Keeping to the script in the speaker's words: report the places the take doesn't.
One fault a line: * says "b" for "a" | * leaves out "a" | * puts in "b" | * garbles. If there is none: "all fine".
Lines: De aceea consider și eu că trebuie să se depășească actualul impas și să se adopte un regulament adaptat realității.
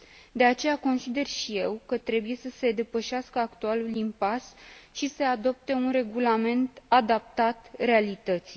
* leaves out "să"